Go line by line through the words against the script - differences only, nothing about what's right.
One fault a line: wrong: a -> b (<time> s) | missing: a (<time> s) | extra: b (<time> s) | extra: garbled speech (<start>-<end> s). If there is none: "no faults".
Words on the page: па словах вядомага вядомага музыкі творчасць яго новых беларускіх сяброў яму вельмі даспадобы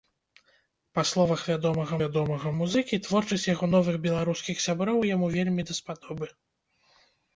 no faults